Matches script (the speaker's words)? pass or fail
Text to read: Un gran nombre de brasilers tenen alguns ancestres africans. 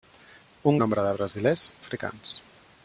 fail